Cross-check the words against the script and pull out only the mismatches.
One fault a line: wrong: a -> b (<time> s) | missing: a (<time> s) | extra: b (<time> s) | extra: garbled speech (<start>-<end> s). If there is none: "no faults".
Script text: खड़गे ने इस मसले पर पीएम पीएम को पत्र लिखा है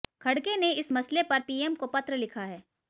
missing: पीएम (1.8 s)